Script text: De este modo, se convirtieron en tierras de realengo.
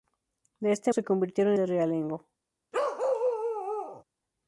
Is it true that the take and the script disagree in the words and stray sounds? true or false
true